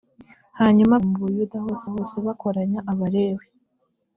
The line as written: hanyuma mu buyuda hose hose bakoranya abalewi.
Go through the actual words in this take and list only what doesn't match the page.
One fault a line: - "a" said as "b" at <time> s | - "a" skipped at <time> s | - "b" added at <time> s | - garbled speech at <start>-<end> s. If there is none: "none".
none